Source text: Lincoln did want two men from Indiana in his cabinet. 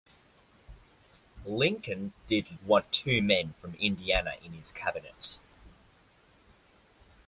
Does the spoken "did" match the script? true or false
true